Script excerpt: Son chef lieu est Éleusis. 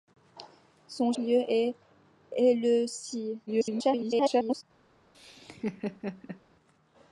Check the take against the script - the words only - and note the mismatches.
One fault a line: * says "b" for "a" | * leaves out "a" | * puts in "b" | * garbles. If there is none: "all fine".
* leaves out "chef"
* garbles